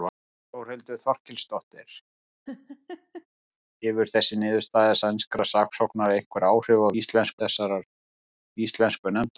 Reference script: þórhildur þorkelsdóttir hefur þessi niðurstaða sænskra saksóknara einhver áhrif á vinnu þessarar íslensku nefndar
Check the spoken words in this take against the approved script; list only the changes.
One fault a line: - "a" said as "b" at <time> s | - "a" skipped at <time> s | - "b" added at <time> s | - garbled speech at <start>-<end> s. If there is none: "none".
- "vinnu" said as "íslensku" at 7.0 s